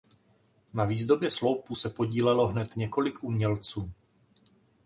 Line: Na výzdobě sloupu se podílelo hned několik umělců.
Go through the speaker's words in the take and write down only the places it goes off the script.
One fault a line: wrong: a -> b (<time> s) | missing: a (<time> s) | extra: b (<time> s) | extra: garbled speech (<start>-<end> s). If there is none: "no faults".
no faults